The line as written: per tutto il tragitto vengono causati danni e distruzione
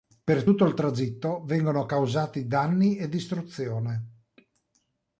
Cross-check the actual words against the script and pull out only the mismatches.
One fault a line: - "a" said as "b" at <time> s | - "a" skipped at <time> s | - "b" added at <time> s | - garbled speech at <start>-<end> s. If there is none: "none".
none